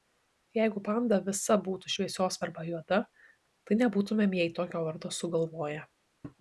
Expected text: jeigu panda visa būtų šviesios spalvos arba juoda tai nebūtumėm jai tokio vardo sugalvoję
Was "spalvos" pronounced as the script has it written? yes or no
no